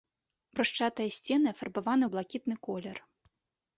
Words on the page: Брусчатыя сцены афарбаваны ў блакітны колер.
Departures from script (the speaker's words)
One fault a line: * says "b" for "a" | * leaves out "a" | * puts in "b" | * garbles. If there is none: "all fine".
all fine